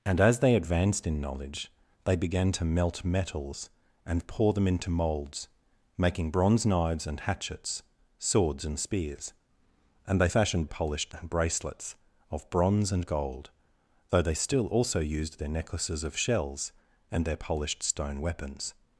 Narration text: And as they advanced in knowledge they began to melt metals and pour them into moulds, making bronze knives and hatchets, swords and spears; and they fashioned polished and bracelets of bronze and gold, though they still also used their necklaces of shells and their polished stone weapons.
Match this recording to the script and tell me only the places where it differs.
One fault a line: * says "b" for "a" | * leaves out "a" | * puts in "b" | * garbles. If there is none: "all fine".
all fine